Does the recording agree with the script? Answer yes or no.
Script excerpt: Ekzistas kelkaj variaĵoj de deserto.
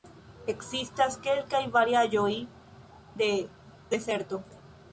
yes